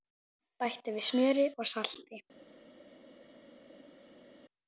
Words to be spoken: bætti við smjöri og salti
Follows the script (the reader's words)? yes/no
yes